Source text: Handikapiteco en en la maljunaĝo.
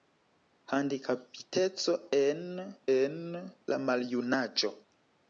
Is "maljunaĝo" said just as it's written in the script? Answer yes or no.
yes